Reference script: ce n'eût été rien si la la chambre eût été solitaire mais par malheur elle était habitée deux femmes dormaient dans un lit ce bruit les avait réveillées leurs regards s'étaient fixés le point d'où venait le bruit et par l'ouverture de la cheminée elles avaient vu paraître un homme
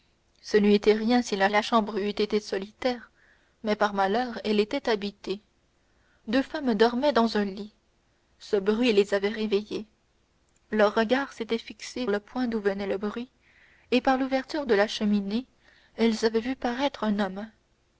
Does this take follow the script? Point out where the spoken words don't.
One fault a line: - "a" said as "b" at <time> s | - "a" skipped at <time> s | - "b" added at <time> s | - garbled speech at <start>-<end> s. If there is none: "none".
none